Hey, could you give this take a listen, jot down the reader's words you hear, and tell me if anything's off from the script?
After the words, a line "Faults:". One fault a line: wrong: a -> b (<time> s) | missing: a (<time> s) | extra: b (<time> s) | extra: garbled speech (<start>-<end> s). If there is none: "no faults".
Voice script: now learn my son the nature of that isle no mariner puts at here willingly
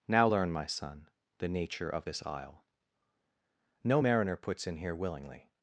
now learn my son the nature of this isle no mariner puts in here willingly
Faults:
wrong: that -> this (2.0 s)
wrong: at -> in (4.7 s)